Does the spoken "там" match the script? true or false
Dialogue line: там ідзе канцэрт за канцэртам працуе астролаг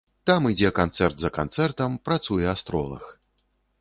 true